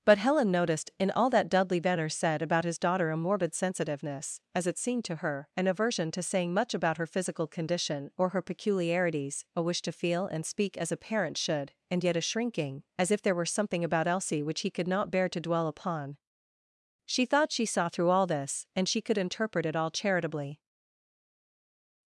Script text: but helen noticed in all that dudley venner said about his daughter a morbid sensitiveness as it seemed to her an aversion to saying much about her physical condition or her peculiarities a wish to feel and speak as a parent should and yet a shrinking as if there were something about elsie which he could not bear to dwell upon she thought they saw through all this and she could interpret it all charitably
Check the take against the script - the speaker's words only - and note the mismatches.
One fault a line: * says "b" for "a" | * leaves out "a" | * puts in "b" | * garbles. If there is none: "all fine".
* says "she" for "they"